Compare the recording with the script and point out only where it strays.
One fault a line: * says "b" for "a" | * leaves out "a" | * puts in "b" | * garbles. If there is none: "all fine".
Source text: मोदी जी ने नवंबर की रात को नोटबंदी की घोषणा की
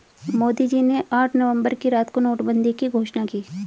* puts in "आठ"